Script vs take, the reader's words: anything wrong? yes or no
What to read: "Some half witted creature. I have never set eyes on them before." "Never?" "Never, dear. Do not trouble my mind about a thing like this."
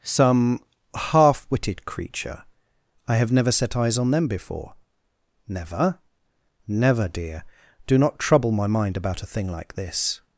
no